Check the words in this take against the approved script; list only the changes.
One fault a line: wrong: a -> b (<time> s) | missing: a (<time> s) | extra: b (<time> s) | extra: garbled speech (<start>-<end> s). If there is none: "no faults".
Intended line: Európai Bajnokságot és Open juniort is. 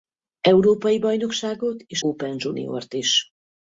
no faults